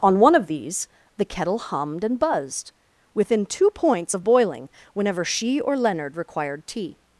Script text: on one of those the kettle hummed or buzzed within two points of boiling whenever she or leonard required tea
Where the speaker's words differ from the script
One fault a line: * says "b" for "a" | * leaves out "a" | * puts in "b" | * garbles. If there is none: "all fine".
* says "these" for "those"
* says "and" for "or"